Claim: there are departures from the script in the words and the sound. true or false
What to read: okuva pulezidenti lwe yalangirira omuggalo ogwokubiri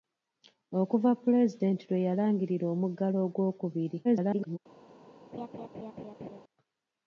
true